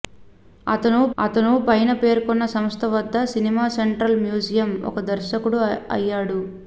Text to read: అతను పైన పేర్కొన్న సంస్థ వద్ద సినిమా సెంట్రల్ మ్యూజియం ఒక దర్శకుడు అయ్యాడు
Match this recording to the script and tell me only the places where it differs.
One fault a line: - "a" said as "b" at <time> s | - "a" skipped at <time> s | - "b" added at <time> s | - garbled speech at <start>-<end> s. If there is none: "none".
- "అతను" added at 1.2 s